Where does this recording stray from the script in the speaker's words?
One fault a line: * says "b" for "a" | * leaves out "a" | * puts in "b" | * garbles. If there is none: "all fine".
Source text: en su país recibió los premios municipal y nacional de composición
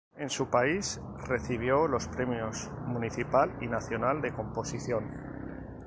all fine